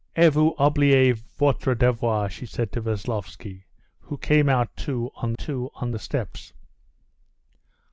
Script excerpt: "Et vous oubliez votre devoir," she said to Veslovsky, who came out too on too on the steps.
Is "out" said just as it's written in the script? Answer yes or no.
yes